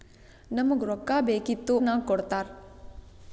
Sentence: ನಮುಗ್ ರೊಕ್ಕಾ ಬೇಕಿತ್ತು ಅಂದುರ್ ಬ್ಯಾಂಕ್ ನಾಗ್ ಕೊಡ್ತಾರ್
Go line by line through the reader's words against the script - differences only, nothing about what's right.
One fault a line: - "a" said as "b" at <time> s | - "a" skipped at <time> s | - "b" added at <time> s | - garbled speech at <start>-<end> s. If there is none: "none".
- "ಅಂದುರ್ ಬ್ಯಾಂಕ್" skipped at 1.8 s